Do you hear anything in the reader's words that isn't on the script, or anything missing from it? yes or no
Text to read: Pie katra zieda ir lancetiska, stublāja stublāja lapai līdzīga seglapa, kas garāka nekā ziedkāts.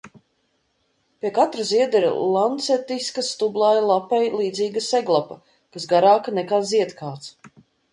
yes